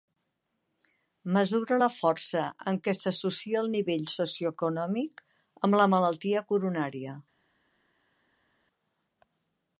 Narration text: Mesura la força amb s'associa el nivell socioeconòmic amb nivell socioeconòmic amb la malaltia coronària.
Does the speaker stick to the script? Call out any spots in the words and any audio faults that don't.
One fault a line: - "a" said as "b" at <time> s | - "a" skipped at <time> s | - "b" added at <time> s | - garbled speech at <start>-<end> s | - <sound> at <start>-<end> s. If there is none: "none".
- "què" added at 2.9 s
- "nivell socioeconòmic amb" skipped at 5.8 s